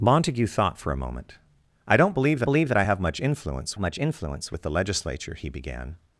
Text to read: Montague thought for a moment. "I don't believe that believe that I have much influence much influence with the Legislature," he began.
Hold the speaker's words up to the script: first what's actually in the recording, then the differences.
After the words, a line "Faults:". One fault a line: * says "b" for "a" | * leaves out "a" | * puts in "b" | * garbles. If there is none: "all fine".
Montague thought for a moment. "I don't believe that believe that I have much influence much influence with the Legislature," he began.
Faults:
all fine